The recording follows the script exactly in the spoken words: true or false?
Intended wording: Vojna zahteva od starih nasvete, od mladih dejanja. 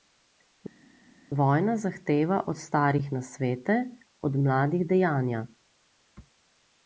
true